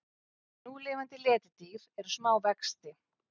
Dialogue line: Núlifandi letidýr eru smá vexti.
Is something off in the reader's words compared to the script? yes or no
no